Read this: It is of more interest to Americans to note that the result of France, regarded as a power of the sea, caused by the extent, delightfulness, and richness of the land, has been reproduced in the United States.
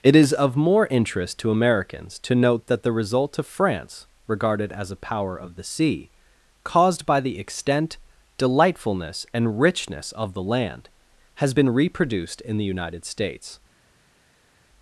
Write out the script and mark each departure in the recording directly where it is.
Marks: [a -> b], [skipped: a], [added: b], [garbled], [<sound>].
It is of more interest to Americans to note that the result of France, regarded as a power of the sea, caused by the extent, delightfulness, and richness of the land, has been reproduced in the United States.